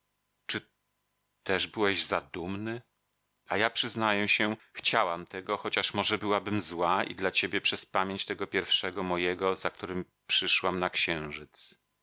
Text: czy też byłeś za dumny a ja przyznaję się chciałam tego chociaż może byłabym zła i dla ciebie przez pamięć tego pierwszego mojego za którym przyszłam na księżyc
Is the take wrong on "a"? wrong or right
right